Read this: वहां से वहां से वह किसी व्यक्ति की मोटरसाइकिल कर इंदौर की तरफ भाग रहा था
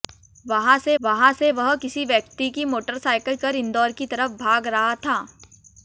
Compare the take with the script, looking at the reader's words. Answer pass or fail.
pass